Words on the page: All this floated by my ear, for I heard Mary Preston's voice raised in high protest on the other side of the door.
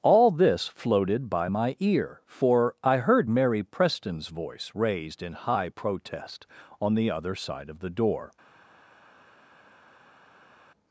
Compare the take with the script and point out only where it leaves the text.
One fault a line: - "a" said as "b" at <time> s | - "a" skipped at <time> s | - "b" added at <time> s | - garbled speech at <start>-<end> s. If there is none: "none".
none